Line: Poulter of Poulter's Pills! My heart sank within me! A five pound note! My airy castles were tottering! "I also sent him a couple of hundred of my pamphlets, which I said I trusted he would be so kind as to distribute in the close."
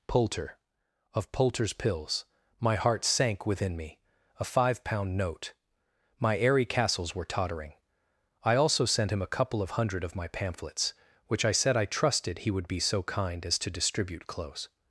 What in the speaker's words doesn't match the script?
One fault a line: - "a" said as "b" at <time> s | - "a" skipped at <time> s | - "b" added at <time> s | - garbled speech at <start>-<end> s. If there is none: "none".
- "in the" skipped at 14.3 s